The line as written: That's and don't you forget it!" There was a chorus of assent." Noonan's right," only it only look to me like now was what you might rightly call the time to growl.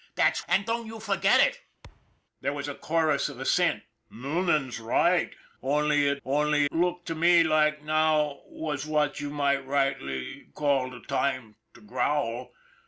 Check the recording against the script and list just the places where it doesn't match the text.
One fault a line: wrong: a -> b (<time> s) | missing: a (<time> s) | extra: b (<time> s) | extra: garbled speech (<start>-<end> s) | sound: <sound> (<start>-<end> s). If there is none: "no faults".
sound: thud (1.8-2.2 s)